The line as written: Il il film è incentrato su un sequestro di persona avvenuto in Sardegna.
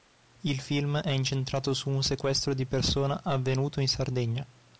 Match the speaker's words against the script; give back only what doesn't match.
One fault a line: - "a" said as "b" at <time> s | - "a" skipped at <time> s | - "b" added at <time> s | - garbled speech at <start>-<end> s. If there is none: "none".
- "il" skipped at 0.6 s